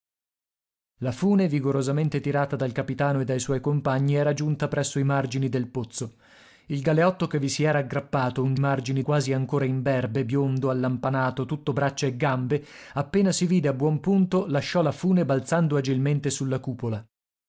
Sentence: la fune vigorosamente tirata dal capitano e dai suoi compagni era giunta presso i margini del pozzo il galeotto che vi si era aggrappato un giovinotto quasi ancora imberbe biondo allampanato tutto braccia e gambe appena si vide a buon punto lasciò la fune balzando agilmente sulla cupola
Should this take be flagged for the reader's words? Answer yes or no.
yes